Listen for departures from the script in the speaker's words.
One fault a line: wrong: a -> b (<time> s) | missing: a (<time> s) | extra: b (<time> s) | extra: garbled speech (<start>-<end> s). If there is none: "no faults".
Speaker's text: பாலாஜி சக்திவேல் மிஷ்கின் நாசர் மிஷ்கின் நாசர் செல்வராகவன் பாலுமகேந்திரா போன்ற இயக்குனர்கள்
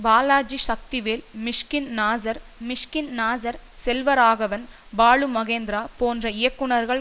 no faults